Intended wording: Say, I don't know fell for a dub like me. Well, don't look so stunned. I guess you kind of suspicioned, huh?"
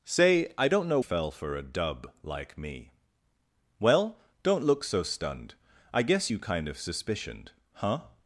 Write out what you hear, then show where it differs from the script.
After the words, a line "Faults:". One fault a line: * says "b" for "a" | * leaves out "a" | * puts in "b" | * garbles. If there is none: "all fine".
Say, I don't know fell for a dub like me. Well, don't look so stunned. I guess you kind of suspicioned, huh?"
Faults:
all fine